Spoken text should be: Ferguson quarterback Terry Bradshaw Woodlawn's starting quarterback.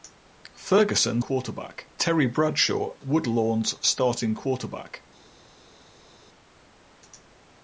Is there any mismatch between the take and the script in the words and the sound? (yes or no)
no